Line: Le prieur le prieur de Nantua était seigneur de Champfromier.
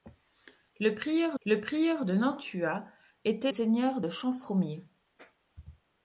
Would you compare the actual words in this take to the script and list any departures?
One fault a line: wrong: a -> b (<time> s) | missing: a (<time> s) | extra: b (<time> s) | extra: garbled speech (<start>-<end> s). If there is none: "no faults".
no faults